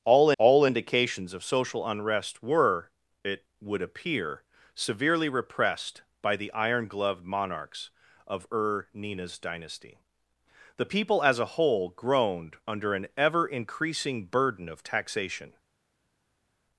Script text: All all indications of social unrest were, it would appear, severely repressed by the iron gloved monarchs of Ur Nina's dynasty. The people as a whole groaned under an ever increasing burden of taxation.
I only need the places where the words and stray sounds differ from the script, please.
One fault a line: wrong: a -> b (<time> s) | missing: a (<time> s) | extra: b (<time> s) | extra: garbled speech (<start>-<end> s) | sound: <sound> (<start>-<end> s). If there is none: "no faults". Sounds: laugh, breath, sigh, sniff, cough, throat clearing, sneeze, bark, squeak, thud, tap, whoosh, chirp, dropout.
no faults